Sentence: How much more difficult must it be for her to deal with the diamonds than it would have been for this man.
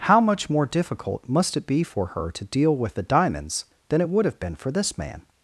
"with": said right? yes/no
yes